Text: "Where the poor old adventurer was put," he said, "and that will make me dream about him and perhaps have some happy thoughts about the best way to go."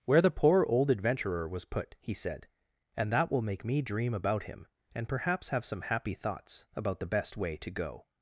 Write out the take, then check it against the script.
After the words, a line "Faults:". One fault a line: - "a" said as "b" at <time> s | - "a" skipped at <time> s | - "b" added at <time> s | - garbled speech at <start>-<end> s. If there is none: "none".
"Where the poor old adventurer was put," he said, "and that will make me dream about him and perhaps have some happy thoughts about the best way to go."
Faults:
none